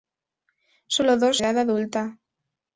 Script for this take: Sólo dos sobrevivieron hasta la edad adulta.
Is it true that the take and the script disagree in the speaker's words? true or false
true